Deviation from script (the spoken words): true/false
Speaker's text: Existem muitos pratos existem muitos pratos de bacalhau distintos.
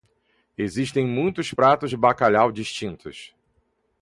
true